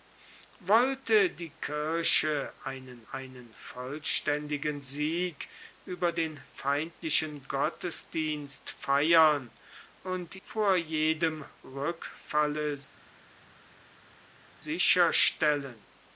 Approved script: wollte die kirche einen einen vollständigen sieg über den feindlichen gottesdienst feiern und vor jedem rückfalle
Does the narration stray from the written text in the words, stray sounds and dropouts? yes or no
no